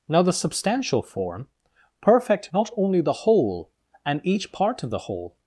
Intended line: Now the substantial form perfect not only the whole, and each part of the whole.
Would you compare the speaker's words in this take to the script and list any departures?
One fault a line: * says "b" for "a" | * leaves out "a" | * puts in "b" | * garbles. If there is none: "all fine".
all fine